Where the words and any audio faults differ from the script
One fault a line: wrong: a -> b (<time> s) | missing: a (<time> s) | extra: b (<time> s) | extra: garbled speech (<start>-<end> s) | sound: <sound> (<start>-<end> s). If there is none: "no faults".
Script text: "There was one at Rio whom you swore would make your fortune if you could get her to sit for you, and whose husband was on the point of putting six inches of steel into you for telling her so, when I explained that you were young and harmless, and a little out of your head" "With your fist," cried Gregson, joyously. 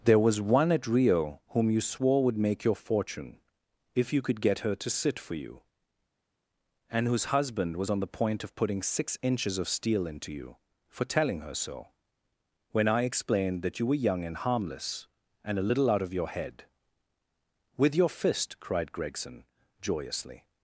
no faults